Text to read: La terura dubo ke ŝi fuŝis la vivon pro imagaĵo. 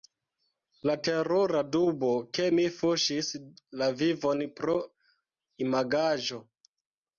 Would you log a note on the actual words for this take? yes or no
yes